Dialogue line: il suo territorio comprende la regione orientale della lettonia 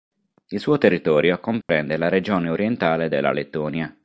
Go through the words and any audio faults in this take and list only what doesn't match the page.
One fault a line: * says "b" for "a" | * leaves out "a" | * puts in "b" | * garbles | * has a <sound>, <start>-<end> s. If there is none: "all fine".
* has a dropout, 1.6-1.7 s